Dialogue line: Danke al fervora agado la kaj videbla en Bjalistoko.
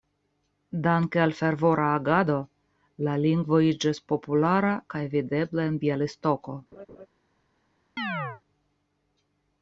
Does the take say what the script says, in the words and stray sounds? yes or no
no